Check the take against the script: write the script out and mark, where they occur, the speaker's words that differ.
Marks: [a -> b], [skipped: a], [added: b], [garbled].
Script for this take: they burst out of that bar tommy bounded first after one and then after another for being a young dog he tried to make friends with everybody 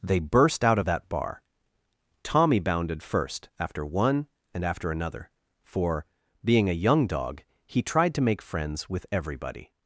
they burst out of that bar tommy bounded first after one and [skipped: then] after another for being a young dog he tried to make friends with everybody